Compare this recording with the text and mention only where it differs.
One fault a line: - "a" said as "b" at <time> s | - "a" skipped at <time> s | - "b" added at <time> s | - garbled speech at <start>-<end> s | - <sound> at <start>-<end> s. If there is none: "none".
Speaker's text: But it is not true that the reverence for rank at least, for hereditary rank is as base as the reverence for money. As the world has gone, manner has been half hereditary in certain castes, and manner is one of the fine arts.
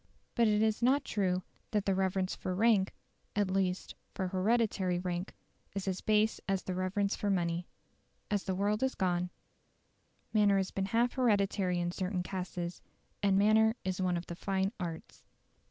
none